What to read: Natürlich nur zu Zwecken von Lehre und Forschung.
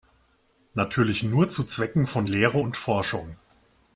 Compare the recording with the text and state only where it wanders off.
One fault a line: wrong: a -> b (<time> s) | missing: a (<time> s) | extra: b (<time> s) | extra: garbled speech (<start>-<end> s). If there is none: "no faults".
no faults